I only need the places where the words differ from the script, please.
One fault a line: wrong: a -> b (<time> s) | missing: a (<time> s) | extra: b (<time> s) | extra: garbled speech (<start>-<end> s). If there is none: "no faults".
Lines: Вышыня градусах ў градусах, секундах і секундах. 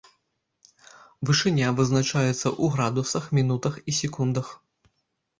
wrong: градусах -> вызначаецца (1.8 s)
wrong: секундах -> мінутах (3.4 s)